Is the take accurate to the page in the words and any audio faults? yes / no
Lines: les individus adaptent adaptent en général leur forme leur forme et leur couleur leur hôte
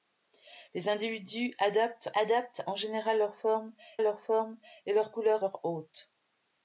yes